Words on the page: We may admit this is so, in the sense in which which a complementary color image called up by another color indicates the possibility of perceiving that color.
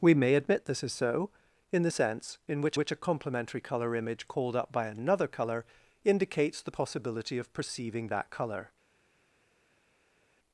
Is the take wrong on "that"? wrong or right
right